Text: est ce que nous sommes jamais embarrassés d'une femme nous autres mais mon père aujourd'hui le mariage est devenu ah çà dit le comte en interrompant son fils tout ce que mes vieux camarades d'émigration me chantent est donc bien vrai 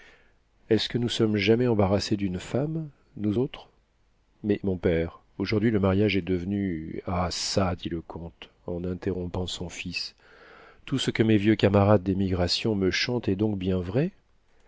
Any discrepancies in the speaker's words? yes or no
no